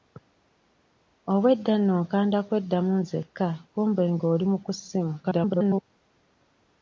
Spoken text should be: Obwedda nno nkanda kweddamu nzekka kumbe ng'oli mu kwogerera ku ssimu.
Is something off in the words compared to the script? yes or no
yes